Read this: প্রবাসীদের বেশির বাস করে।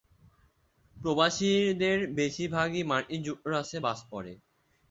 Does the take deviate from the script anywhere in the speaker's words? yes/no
yes